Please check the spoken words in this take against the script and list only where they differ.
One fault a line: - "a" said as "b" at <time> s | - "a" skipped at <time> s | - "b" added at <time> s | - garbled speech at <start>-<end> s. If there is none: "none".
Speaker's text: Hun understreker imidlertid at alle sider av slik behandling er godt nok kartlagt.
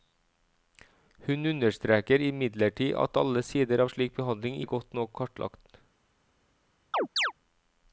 none